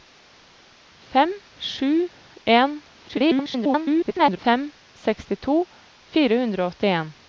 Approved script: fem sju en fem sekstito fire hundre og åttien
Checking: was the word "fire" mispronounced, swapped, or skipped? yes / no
no